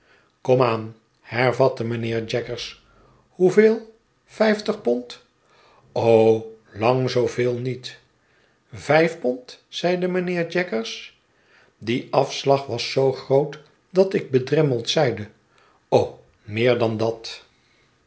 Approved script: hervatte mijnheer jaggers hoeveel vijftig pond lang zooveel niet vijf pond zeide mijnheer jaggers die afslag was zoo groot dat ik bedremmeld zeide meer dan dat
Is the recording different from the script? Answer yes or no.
no